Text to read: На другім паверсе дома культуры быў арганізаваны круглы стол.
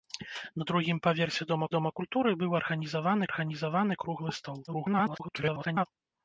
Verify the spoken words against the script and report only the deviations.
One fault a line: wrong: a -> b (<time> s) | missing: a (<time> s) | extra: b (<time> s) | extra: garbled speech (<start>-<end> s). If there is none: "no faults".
extra: дома (1.8 s)
extra: арганізаваны (3.3 s)
extra: garbled speech (4.7-5.9 s)